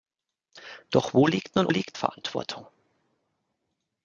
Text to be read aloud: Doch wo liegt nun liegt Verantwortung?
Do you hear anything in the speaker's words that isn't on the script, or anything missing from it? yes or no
no